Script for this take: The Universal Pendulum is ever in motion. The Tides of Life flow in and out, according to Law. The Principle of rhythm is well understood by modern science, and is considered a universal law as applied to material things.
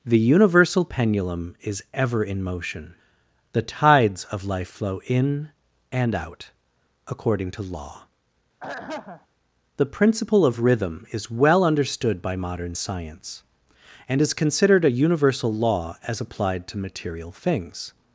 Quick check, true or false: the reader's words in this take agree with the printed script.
true